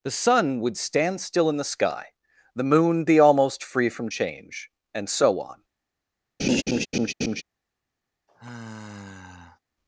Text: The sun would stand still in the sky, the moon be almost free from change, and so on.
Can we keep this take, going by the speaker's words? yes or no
yes